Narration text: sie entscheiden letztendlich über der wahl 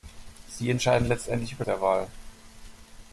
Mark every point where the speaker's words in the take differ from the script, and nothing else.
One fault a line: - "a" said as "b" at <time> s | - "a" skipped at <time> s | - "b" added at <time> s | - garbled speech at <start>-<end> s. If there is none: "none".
none